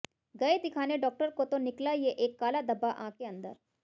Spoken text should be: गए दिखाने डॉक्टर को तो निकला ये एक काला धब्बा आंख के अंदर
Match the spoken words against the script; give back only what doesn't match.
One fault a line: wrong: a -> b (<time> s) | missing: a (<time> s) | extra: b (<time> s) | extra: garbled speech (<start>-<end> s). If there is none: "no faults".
no faults